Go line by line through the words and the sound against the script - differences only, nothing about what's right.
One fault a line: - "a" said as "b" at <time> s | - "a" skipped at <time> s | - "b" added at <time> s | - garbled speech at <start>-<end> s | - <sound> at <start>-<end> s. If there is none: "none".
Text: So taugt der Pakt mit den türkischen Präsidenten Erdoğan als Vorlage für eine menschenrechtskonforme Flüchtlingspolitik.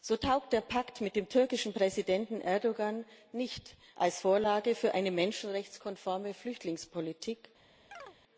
- "den" said as "dem" at 1.1 s
- "nicht" added at 3.3 s
- chirp at 7.9-8.2 s